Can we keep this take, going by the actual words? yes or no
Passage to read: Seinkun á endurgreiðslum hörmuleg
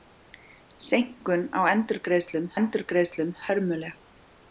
no